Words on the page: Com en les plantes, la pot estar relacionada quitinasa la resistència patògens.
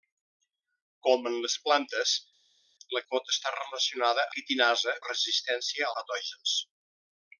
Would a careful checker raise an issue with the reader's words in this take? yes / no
no